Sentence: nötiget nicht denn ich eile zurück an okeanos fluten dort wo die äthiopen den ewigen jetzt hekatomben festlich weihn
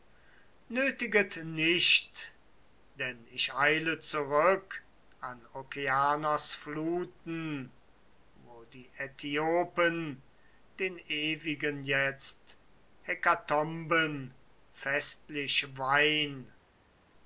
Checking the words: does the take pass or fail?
fail